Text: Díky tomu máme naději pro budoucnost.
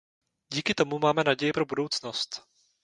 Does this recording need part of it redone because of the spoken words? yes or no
no